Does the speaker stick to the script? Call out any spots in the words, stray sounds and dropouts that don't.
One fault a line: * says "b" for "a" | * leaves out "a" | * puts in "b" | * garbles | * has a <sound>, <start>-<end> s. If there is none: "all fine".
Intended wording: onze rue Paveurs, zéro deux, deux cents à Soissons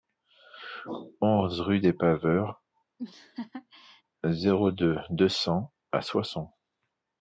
* puts in "des"
* has a laugh, 3.0-4.0 s